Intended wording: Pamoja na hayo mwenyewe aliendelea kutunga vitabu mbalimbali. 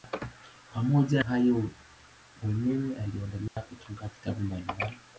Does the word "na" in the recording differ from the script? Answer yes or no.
yes